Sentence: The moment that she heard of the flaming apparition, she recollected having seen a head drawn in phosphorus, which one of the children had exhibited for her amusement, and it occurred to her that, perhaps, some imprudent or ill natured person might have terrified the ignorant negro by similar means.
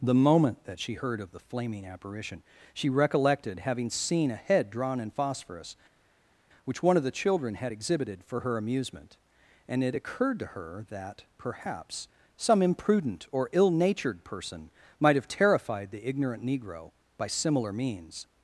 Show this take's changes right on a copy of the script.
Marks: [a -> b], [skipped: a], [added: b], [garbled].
The moment that she heard of the flaming apparition, she recollected having seen a head drawn in phosphorus, which one of the children had exhibited for her amusement, and it occurred to her that, perhaps, some imprudent or ill natured person might have terrified the ignorant negro by similar means.